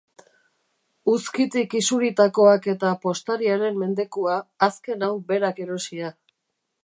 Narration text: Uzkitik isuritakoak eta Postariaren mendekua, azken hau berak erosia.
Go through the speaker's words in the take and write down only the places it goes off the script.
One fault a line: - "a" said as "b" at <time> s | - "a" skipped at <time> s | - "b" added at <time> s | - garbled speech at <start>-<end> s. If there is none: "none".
none